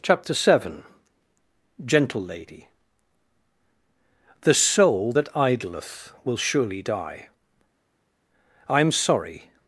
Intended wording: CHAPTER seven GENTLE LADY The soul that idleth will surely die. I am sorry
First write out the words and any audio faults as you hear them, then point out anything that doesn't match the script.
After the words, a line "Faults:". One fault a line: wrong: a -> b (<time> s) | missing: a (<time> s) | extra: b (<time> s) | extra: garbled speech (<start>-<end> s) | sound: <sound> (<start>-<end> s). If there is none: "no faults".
CHAPTER seven GENTLE LADY The soul that idleth will surely die. I am sorry
Faults:
no faults